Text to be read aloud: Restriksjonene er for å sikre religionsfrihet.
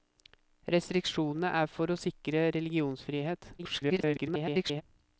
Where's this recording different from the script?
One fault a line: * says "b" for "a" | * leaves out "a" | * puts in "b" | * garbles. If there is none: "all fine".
* garbles